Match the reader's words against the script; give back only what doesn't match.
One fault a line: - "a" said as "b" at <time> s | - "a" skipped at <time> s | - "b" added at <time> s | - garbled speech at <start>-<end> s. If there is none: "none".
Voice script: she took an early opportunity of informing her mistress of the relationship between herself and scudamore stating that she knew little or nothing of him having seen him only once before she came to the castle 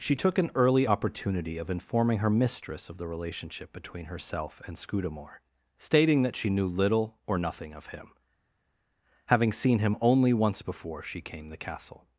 - "to" skipped at 11.5 s